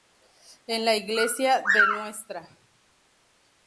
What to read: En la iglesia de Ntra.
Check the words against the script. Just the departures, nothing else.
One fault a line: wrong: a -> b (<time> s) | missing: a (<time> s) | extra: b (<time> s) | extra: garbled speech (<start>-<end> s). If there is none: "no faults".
no faults